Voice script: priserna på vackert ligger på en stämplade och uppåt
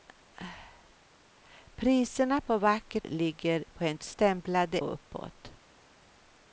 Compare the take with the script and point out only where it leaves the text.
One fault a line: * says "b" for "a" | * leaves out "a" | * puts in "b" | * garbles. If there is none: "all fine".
all fine